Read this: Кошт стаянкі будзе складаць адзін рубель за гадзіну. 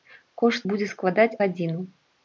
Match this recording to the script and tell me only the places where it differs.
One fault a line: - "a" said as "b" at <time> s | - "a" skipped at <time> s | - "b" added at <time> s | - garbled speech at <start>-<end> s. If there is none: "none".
- "стаянкі" skipped at 0.6 s
- "адзін рубель за" skipped at 1.3 s